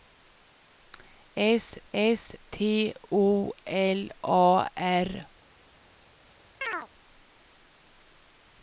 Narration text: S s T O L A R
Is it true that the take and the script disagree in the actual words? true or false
false